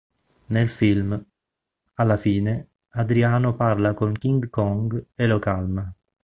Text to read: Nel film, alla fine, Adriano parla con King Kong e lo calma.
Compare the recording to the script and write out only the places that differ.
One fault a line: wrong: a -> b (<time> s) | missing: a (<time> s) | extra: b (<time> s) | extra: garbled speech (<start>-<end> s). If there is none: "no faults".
no faults